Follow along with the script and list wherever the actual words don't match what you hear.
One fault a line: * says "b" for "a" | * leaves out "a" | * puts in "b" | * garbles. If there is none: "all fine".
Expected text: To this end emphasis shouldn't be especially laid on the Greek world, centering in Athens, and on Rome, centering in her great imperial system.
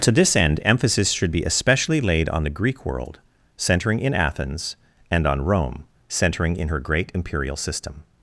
* says "should" for "shouldn't"